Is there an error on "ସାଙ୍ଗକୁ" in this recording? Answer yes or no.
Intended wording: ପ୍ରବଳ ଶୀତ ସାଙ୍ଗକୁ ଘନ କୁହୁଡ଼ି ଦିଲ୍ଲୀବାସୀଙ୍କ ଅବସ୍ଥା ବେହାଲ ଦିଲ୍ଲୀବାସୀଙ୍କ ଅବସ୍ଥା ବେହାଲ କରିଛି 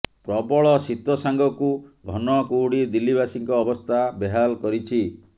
no